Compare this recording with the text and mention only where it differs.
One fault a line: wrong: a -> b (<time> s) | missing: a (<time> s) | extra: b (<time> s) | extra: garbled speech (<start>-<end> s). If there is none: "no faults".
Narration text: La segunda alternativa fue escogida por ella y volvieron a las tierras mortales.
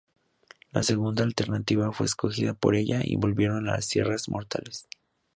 no faults